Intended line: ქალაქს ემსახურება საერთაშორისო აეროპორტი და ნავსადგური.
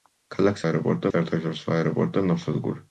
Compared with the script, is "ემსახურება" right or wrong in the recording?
wrong